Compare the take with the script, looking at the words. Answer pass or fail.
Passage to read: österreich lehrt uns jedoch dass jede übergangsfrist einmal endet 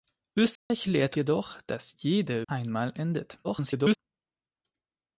fail